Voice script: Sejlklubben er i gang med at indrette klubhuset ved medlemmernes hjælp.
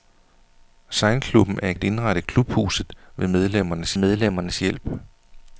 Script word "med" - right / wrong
wrong